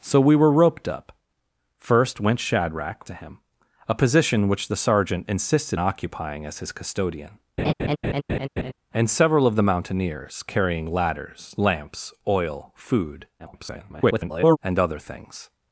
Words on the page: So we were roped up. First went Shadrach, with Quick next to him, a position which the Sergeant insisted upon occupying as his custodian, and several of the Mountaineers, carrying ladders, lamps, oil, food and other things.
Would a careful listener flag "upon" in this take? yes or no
yes